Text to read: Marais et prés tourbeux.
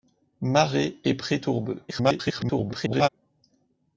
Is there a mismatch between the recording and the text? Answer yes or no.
yes